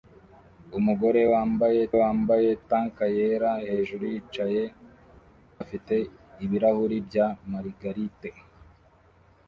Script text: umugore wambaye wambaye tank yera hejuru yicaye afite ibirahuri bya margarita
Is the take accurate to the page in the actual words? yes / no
yes